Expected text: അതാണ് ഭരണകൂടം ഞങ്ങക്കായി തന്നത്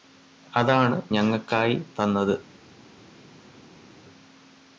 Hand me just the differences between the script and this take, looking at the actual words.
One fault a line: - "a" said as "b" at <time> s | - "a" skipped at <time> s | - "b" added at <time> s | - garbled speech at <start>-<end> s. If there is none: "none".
- "ഭരണകൂടം" skipped at 1.0 s